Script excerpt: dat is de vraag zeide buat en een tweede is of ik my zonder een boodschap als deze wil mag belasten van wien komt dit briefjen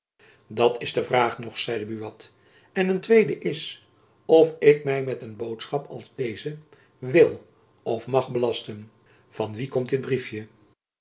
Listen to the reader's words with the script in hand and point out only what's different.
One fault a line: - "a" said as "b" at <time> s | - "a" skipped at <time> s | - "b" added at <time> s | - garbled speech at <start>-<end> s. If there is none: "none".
- "nog" added at 1.4 s
- "zonder" said as "met" at 5.0 s
- "of" added at 7.8 s